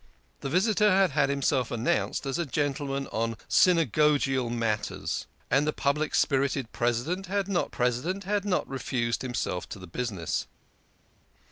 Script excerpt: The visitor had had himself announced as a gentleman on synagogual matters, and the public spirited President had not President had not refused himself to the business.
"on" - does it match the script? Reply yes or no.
yes